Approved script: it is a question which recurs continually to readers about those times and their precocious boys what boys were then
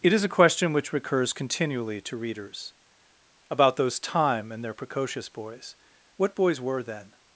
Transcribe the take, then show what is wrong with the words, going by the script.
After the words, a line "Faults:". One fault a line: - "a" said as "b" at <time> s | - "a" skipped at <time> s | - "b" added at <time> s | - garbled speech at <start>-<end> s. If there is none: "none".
it is a question which recurs continually to readers about those time and their precocious boys what boys were then
Faults:
- "times" said as "time" at 4.0 s